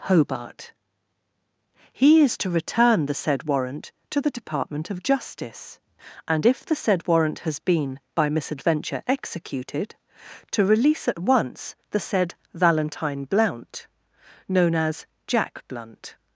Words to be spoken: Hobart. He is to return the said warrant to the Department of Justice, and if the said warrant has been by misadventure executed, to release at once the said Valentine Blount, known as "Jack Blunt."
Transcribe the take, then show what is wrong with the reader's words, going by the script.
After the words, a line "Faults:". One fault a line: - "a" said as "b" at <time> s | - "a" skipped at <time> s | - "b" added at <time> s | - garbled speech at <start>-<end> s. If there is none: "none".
Hobart. He is to return the said warrant to the Department of Justice, and if the said warrant has been by misadventure executed, to release at once the said Valentine Blount, known as "Jack Blunt."
Faults:
none